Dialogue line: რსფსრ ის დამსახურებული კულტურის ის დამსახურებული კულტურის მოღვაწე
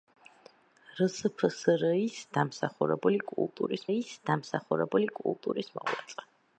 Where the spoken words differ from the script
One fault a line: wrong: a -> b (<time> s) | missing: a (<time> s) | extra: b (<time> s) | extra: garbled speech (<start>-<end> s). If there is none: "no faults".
no faults